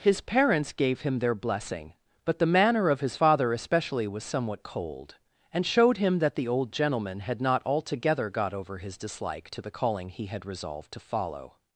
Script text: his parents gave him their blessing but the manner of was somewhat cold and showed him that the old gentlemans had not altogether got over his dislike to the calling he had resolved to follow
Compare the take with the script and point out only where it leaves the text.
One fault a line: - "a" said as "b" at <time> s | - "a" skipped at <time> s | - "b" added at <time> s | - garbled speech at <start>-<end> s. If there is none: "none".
- "his father especially" added at 3.0 s
- "gentlemans" said as "gentleman" at 6.7 s